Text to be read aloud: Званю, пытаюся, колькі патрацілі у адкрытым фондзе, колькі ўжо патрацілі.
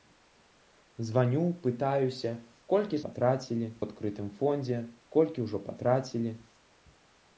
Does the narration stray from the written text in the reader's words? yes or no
no